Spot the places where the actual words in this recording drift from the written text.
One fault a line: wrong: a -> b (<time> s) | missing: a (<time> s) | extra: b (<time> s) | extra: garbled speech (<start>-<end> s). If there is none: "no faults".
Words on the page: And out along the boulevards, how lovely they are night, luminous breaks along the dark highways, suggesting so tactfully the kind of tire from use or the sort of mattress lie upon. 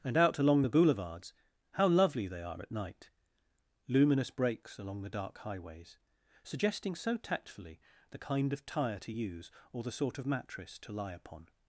extra: at (2.6 s)
wrong: from -> to (9.0 s)
extra: to (10.8 s)